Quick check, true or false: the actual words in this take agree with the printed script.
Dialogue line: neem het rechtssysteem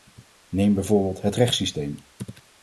false